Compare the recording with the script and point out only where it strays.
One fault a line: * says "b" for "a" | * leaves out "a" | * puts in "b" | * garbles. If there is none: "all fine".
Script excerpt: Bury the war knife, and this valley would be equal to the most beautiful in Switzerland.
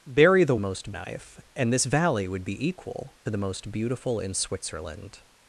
* says "most" for "war"
* leaves out "to"